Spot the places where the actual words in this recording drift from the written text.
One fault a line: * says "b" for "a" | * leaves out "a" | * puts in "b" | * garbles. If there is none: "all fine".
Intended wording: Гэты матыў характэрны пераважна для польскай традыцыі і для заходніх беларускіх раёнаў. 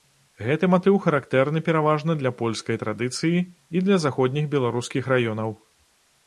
all fine